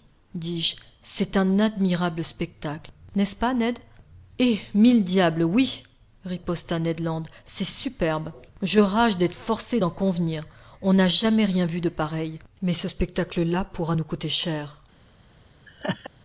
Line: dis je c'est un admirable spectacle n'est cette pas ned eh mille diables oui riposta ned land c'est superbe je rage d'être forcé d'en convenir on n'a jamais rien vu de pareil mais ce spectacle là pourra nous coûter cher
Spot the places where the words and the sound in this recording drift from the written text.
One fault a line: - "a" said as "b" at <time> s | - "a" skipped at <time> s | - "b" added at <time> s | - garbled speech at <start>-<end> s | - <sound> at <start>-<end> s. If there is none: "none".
- "cette" said as "ce" at 3.2 s
- laugh at 15.7-16.1 s